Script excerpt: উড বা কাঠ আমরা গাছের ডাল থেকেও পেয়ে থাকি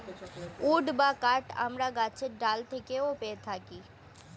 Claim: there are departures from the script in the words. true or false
false